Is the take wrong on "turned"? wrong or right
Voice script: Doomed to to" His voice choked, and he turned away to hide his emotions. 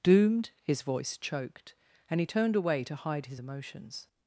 right